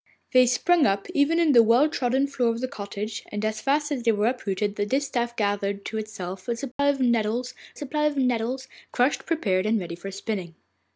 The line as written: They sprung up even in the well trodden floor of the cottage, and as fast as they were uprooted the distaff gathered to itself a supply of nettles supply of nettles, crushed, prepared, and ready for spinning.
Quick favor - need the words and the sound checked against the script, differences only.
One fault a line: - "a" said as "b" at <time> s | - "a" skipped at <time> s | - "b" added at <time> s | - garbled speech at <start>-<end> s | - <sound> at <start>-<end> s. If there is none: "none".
- dropout at 6.7-6.8 s